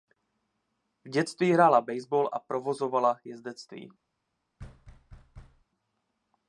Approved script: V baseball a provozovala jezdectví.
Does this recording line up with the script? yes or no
no